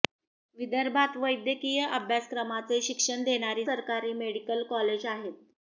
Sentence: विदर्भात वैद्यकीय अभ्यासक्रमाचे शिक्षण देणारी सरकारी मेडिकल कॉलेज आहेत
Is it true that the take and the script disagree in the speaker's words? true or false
false